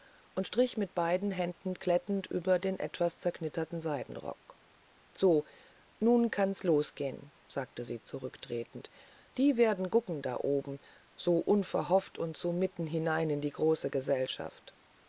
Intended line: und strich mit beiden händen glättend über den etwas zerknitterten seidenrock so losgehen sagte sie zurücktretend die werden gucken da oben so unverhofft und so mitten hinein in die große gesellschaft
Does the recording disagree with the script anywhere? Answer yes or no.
yes